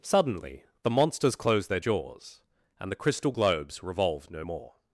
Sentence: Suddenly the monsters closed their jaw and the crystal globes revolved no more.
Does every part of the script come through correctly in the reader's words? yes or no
no